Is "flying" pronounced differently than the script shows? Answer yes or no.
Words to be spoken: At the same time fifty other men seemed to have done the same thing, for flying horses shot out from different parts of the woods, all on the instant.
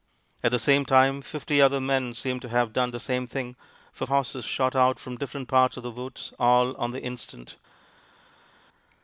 yes